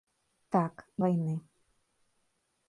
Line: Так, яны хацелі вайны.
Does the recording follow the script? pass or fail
fail